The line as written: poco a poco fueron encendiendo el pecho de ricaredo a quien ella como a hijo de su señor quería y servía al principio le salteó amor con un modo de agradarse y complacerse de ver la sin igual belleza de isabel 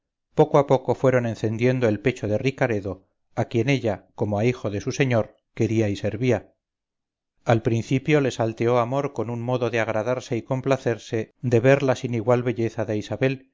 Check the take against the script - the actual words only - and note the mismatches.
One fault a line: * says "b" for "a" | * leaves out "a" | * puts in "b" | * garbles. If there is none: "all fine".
all fine